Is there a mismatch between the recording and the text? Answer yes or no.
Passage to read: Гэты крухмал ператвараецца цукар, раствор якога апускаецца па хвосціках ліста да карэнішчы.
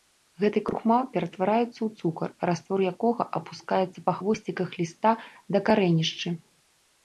yes